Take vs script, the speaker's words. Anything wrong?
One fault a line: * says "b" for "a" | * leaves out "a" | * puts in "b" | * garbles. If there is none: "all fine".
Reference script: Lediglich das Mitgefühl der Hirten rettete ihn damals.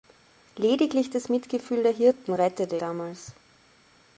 * leaves out "ihn"